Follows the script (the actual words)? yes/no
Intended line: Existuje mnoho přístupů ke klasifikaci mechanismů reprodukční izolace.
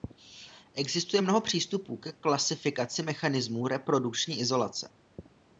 yes